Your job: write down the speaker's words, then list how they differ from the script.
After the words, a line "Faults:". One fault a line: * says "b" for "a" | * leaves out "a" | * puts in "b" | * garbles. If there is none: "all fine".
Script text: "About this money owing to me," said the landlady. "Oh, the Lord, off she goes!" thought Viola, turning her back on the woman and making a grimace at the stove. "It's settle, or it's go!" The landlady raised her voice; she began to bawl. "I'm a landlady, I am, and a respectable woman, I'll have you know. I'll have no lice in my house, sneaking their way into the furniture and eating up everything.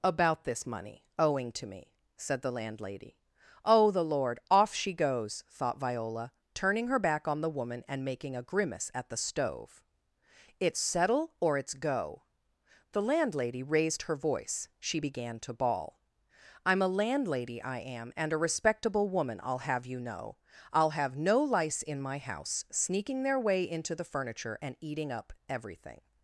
"About this money owing to me," said the landlady. "Oh, the Lord, off she goes!" thought Viola, turning her back on the woman and making a grimace at the stove. "It's settle, or it's go!" The landlady raised her voice; she began to bawl. "I'm a landlady, I am, and a respectable woman, I'll have you know. I'll have no lice in my house, sneaking their way into the furniture and eating up everything.
Faults:
all fine